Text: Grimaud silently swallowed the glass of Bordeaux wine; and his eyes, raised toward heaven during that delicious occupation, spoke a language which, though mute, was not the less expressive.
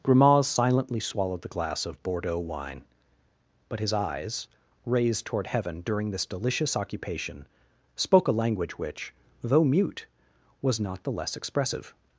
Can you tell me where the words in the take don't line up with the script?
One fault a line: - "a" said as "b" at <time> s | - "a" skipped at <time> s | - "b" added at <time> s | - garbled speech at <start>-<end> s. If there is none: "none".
- "and" said as "but" at 3.7 s
- "that" said as "this" at 6.1 s